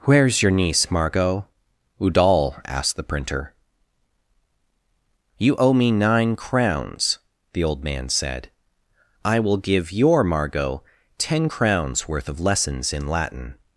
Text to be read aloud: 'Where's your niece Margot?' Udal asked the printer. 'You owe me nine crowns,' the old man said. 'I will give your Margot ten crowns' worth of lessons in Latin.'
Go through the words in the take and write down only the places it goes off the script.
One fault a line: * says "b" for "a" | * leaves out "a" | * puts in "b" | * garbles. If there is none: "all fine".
all fine